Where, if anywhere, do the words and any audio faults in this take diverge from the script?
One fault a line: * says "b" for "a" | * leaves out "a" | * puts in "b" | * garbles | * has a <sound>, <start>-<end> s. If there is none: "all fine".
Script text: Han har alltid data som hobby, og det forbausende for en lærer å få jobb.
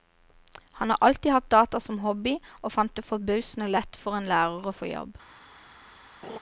* puts in "hatt"
* puts in "fant"
* puts in "lett"
* has a laugh, 6.2-6.4 s